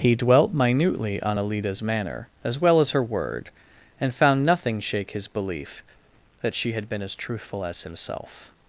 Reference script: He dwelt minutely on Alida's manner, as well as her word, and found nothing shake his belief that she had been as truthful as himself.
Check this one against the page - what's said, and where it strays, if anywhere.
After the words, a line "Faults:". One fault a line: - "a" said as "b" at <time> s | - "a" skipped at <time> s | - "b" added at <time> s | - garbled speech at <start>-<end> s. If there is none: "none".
He dwelt minutely on Alida's manner, as well as her word, and found nothing shake his belief that she had been as truthful as himself.
Faults:
none